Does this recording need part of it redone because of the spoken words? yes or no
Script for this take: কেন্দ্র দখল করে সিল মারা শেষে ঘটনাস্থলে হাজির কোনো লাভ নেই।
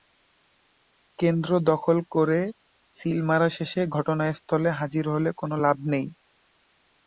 yes